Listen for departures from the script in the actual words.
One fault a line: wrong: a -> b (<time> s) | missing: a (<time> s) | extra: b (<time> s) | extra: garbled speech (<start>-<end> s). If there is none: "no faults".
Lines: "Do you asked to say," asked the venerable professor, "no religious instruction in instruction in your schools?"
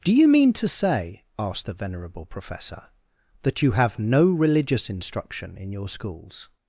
wrong: asked -> mean (0.3 s)
extra: that you have (3.4 s)
missing: instruction in (5.7 s)